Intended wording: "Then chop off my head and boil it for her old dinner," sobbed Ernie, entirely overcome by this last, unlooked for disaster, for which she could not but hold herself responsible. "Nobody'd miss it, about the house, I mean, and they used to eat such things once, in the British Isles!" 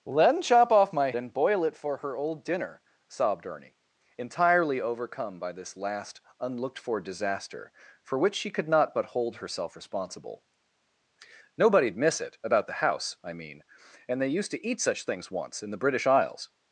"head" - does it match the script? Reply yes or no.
no